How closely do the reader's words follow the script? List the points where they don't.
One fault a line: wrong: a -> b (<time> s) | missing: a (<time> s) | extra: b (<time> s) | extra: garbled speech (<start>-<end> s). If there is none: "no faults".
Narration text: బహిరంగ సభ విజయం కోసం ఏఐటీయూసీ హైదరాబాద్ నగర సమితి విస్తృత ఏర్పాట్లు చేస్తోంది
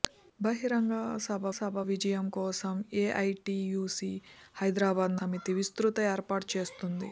extra: సభ (1.6 s)
missing: నగర (5.1 s)